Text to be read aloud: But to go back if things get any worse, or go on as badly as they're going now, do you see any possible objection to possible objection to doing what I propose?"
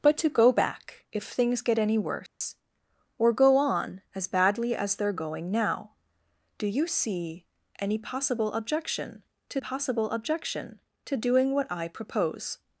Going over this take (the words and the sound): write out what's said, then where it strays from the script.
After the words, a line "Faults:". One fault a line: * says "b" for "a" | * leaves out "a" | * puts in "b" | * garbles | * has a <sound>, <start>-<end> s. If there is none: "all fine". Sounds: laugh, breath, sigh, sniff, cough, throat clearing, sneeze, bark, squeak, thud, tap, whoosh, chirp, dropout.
But to go back if things get any worse, or go on as badly as they're going now, do you see any possible objection to possible objection to doing what I propose?"
Faults:
* has a dropout, 2.3-2.4 s